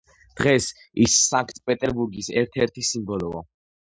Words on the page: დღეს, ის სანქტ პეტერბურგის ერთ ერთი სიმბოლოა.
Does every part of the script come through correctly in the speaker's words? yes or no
yes